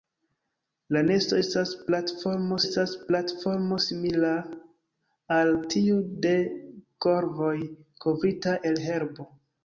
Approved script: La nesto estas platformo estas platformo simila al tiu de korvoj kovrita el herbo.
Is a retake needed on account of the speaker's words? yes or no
no